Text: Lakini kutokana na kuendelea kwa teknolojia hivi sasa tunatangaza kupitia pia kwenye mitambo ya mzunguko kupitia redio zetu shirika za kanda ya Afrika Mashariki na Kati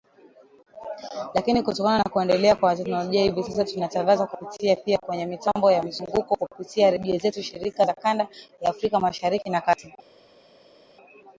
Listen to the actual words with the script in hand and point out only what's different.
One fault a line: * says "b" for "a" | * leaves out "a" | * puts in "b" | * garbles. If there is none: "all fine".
all fine